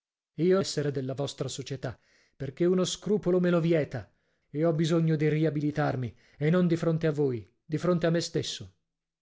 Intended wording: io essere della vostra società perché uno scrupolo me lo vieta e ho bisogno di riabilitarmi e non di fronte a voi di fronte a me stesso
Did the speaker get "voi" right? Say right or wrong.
right